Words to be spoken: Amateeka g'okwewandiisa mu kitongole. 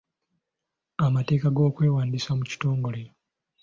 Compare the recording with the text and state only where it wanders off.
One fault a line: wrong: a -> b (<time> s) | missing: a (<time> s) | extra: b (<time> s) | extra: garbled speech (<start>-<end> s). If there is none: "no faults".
no faults